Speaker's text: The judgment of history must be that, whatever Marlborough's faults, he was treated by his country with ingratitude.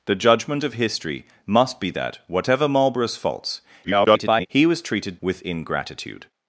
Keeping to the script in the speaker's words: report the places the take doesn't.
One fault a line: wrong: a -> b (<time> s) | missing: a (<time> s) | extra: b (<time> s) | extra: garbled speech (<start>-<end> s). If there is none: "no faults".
extra: garbled speech (3.8-4.5 s)
missing: by his country (5.2 s)